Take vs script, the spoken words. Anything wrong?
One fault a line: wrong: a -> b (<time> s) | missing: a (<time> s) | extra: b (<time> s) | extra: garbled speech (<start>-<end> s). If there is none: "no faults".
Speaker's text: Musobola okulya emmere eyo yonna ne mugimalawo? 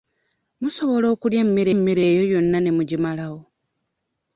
extra: emmere (1.7 s)